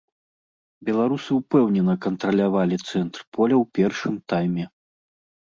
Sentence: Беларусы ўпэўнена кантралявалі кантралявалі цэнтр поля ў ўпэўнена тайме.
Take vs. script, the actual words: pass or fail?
fail